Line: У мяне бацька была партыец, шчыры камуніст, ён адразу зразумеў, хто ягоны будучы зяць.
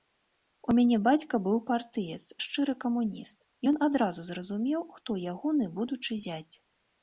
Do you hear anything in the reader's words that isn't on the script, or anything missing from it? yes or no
yes